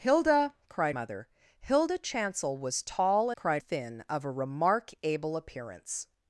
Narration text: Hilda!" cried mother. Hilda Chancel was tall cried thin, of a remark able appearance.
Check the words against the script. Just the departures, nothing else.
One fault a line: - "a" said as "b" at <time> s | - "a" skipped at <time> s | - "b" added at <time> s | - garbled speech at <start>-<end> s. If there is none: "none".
none